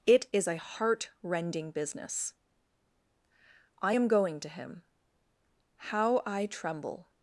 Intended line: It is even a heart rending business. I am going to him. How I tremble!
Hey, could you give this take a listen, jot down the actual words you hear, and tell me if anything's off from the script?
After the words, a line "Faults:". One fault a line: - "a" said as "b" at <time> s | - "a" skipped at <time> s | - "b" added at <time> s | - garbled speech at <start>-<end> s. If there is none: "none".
It is a heart rending business. I am going to him. How I tremble!
Faults:
- "even" skipped at 0.5 s